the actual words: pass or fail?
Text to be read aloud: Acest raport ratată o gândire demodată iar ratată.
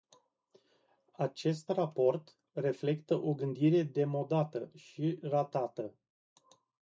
fail